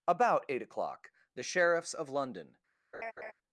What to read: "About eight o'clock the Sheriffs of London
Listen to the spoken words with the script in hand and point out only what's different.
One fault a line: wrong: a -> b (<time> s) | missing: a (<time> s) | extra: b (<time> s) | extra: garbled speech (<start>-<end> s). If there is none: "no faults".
no faults